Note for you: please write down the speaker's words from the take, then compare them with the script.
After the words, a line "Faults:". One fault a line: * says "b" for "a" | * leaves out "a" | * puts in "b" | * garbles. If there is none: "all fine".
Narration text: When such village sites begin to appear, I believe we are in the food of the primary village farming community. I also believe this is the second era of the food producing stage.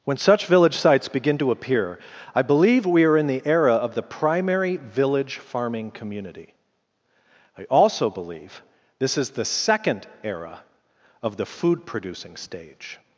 When such village sites begin to appear, I believe we are in the era of the primary village farming community. I also believe this is the second era of the food producing stage.
Faults:
* says "era" for "food"